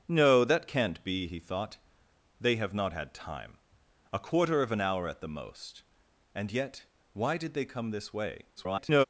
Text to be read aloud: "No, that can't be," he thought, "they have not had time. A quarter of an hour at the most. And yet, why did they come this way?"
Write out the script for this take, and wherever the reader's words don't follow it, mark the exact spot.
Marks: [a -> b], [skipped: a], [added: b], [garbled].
"No, that can't be," he thought, "they have not had time. A quarter of an hour at the most. And yet, why did they come this way?" [garbled]